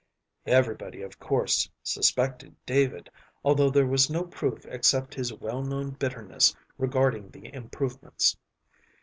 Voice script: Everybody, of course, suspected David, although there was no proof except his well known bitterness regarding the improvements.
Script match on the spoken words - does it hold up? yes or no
yes